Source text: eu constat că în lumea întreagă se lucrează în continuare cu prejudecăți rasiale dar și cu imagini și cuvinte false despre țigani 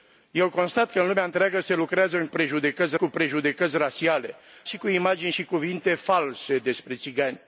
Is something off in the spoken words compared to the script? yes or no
yes